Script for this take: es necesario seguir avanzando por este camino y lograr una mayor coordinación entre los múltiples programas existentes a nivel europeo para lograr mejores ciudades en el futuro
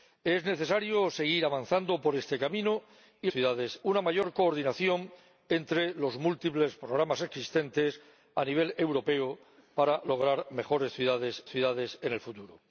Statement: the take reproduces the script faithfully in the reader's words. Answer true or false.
false